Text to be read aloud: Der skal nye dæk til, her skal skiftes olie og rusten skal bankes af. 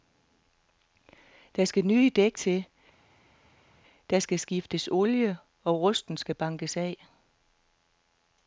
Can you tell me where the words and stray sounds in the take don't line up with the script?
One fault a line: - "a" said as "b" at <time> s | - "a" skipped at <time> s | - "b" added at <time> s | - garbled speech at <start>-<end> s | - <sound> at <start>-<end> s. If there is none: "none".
- "her" said as "der" at 4.1 s